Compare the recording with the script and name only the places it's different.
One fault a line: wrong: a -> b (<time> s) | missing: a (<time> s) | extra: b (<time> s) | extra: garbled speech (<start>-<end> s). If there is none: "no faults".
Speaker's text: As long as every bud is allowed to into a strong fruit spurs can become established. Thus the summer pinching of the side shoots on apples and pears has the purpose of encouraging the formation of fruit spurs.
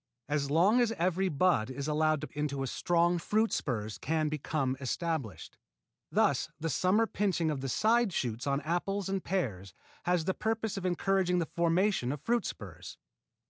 no faults